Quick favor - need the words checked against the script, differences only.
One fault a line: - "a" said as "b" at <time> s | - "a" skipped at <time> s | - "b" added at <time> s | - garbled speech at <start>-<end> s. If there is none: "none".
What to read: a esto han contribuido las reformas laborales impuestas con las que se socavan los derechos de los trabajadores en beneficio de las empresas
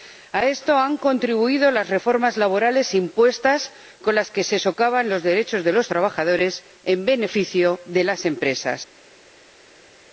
none